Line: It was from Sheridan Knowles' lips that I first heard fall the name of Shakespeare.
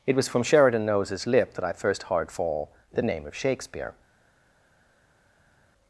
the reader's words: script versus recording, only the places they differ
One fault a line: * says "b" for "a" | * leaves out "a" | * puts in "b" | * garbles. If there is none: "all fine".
* says "lip" for "lips"